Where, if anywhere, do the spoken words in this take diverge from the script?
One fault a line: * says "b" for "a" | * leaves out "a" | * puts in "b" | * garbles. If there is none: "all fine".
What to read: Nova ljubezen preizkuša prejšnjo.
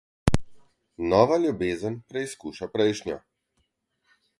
all fine